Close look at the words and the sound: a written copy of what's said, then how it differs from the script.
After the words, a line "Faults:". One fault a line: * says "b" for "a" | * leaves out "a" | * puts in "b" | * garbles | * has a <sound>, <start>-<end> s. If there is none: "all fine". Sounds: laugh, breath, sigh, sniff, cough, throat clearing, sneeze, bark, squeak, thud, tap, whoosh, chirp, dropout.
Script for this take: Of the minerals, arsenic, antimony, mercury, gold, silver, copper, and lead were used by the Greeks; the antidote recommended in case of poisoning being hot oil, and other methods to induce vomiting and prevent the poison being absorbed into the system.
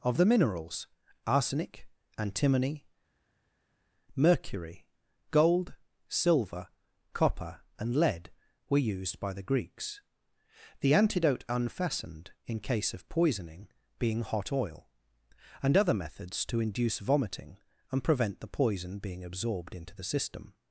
Of the minerals, arsenic, antimony, mercury, gold, silver, copper, and lead were used by the Greeks; the antidote unfastened in case of poisoning being hot oil, and other methods to induce vomiting and prevent the poison being absorbed into the system.
Faults:
* says "unfastened" for "recommended"